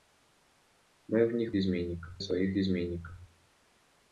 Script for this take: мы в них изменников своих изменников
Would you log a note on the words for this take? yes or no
no